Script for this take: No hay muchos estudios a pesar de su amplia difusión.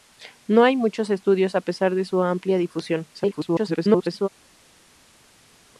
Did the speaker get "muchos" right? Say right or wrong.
right